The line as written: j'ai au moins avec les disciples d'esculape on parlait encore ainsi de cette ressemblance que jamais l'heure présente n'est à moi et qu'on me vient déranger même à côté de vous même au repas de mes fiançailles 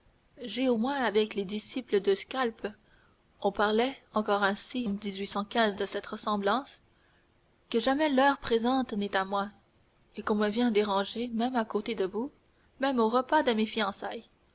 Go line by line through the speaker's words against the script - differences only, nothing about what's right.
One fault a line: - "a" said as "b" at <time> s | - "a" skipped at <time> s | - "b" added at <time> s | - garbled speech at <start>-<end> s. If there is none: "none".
none